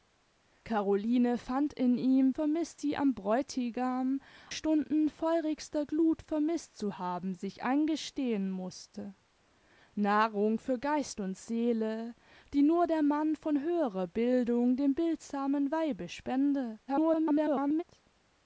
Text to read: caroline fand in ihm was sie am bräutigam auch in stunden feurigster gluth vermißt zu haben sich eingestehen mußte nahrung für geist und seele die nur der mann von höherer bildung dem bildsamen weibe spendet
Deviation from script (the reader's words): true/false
true